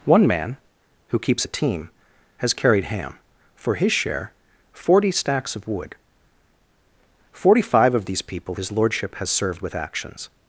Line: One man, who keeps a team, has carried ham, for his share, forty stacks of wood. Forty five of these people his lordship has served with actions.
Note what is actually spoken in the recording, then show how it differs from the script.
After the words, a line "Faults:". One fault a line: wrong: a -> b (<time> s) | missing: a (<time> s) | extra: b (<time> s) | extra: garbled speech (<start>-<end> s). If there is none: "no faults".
One man, who keeps a team, has carried ham, for his share, forty stacks of wood. Forty five of these people his lordship has served with actions.
Faults:
no faults